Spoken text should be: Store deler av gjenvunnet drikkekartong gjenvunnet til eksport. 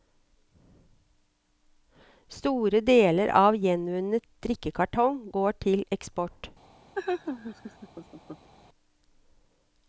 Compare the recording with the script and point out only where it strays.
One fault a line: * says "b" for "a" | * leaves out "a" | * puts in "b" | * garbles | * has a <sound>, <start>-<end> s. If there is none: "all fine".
* says "går" for "gjenvunnet"
* has a laugh, 6.9-8.5 s